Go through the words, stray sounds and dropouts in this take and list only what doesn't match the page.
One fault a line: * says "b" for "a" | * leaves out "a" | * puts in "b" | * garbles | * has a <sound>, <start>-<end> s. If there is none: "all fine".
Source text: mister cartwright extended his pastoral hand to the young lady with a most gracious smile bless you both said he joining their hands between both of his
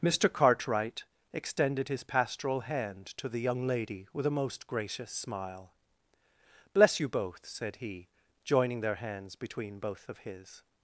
all fine